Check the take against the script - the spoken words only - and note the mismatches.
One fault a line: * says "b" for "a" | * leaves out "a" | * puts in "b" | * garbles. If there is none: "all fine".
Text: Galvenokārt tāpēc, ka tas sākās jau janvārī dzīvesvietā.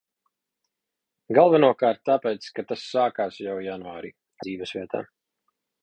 all fine